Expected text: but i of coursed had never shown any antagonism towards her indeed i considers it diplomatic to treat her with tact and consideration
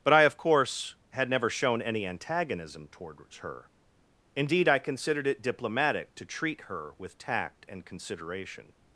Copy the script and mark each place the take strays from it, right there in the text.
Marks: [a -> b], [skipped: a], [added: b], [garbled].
but i of [coursed -> course] had never shown any antagonism towards her indeed i [considers -> considered] it diplomatic to treat her with tact and consideration